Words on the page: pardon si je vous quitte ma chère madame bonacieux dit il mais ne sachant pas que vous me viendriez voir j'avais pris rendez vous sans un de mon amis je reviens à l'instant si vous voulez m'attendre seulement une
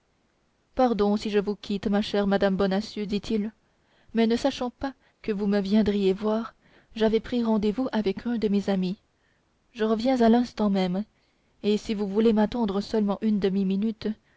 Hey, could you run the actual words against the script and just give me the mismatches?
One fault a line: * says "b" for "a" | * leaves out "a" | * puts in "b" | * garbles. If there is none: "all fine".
* says "avec" for "sans"
* says "mes" for "mon"
* puts in "même et"